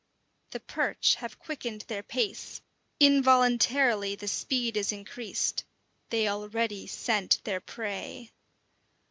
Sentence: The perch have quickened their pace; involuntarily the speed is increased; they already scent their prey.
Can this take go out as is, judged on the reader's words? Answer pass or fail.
pass